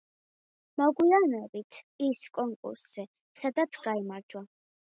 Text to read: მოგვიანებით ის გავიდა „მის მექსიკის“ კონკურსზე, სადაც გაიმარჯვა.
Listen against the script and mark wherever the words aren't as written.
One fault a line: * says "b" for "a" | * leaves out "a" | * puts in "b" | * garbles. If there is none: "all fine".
* leaves out "გავიდა მის მექსიკის"